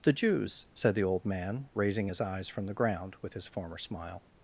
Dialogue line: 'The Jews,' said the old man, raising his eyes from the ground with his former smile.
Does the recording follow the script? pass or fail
pass